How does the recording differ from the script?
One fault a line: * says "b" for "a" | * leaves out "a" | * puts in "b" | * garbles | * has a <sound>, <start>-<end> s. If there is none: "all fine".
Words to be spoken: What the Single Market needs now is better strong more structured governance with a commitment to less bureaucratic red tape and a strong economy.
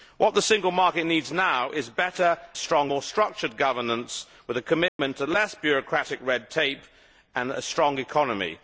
* has a dropout, 4.9-5.0 s